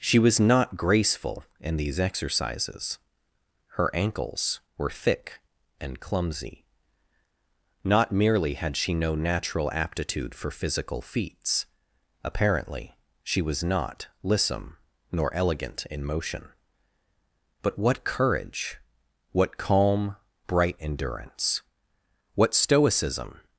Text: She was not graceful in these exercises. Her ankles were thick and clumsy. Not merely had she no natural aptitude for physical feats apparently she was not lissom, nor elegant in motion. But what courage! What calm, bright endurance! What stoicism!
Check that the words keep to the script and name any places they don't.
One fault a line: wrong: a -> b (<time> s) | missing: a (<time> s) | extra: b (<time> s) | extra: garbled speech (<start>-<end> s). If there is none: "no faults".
no faults